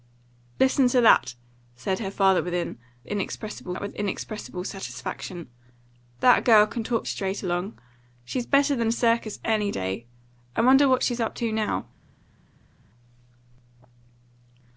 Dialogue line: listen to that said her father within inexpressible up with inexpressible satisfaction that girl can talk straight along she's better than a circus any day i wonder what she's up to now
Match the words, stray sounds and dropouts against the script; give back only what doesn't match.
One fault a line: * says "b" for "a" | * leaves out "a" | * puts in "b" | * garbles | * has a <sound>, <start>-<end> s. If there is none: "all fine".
all fine